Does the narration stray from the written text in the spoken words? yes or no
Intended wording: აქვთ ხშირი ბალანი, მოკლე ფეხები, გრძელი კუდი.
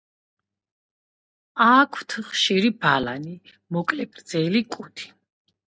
yes